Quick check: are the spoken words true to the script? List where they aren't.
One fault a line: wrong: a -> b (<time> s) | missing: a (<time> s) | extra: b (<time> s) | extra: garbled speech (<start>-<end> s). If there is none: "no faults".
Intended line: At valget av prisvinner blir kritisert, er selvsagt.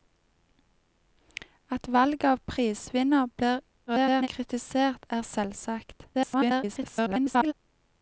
extra: garbled speech (3.9-4.3 s)
extra: garbled speech (6.1-7.5 s)